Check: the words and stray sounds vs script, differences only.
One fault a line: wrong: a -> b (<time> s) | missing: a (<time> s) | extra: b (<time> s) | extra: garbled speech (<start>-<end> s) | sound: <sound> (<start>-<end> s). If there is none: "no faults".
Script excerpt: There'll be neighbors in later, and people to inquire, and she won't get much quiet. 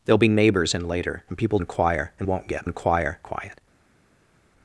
missing: to (1.6 s)
missing: she (2.3 s)
wrong: much -> inquire (2.6 s)